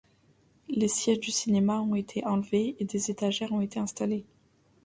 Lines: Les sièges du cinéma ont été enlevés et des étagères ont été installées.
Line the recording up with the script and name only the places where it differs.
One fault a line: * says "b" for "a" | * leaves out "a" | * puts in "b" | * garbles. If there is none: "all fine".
all fine